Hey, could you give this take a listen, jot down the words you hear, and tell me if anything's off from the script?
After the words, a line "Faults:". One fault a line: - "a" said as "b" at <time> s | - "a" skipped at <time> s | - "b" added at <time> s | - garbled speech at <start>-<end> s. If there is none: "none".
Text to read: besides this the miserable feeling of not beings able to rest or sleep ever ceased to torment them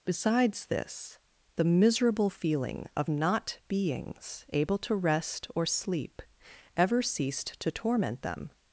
besides this the miserable feeling of not beings able to rest or sleep ever ceased to torment them
Faults:
none